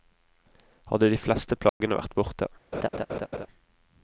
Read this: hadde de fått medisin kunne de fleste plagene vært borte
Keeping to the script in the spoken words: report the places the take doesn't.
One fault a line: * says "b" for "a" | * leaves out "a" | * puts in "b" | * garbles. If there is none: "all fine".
* leaves out "fått medisin kunne"